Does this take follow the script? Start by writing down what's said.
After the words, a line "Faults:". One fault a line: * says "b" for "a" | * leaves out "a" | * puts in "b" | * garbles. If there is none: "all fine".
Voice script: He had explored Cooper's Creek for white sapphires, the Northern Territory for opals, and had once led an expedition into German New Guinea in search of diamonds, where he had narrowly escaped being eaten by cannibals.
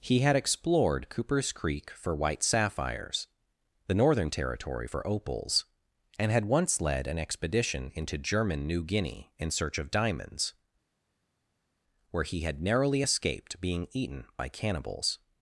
He had explored Cooper's Creek for white sapphires, the Northern Territory for opals, and had once led an expedition into German New Guinea in search of diamonds, where he had narrowly escaped being eaten by cannibals.
Faults:
all fine